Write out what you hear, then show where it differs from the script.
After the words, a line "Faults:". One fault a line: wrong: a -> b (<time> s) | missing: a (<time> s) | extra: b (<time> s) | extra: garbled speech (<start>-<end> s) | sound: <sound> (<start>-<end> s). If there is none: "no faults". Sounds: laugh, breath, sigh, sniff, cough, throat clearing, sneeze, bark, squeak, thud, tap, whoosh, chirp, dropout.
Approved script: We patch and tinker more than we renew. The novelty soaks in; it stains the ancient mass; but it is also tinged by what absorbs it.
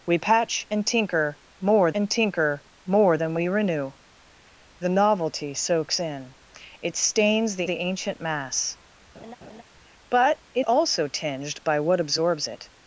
We patch and tinker more and tinker more than we renew. The novelty soaks in; it stains the the ancient mass; but it also tinged by what absorbs it.
Faults:
extra: and tinker more (1.9 s)
extra: the (7.7 s)
sound: laugh (9.1-9.6 s)
missing: is (10.7 s)